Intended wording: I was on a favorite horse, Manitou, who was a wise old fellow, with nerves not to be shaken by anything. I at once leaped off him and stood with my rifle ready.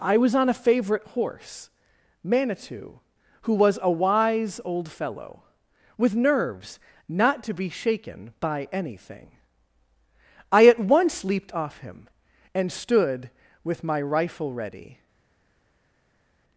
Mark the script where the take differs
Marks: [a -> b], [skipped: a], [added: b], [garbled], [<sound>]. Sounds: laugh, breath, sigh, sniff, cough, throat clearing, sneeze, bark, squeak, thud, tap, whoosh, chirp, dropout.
I was on a favorite horse, Manitou, who was a wise old fellow, with nerves not to be shaken by anything. I at once leaped off him and stood with my rifle ready.